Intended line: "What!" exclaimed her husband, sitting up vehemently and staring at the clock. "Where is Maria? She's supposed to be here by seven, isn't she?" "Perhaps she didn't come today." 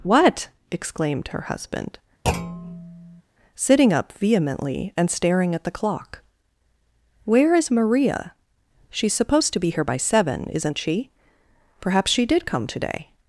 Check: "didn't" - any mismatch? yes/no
yes